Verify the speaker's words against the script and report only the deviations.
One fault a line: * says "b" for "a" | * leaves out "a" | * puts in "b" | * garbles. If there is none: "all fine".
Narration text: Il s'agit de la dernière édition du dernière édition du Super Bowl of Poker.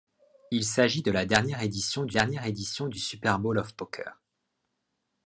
all fine